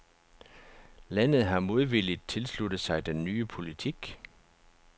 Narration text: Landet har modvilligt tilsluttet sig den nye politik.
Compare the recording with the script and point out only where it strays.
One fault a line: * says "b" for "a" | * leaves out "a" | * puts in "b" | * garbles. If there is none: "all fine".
all fine